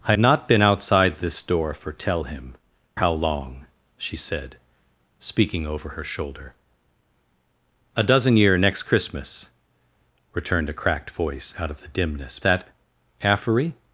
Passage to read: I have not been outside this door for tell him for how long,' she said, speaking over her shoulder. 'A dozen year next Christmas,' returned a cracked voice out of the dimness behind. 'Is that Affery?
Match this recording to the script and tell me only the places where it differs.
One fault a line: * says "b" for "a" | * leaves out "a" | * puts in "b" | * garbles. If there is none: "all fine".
* leaves out "have"
* leaves out "for"
* leaves out "behind Is"